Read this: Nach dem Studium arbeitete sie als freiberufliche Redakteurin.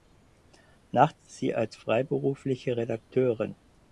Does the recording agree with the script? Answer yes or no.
no